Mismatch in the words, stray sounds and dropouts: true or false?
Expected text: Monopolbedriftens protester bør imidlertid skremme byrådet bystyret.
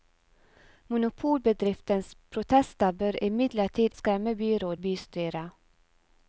false